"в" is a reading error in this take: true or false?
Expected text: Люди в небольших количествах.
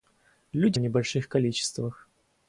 false